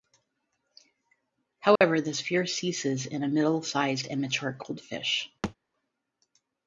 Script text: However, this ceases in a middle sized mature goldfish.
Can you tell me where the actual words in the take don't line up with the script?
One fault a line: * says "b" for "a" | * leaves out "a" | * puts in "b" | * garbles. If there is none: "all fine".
* puts in "fear"
* puts in "and"